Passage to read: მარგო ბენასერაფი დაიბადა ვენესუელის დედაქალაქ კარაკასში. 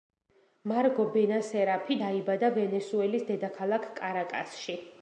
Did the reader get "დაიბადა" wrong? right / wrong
right